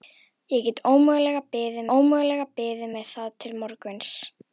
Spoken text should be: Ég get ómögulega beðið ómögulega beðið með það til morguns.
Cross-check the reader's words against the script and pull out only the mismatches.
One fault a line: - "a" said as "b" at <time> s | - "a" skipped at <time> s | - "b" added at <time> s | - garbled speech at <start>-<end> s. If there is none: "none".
none